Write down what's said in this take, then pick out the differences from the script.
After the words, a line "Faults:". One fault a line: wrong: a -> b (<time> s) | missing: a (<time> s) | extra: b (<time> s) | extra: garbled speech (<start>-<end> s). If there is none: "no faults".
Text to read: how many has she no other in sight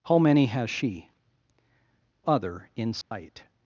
how many has she other in sight
Faults:
missing: no (1.1 s)